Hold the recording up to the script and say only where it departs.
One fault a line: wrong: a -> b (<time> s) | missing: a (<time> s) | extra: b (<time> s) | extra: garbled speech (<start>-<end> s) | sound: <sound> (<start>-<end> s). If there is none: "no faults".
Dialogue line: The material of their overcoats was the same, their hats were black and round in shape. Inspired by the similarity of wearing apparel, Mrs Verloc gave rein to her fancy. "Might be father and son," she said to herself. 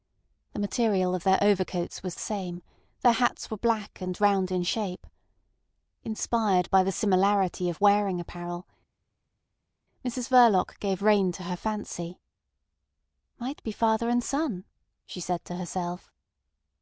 missing: the (2.1 s)